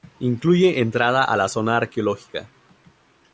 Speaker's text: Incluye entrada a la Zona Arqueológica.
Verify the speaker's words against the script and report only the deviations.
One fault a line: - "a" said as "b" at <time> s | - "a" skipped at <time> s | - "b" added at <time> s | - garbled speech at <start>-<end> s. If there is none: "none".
none